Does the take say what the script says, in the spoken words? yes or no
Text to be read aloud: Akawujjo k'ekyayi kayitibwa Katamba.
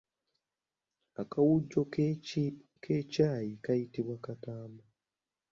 yes